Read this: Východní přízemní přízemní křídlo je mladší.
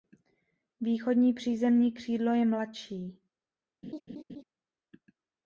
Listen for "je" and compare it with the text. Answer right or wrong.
right